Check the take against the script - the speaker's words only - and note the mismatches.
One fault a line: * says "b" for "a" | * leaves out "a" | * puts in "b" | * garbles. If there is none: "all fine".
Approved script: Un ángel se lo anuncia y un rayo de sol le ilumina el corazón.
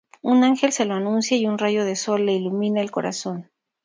all fine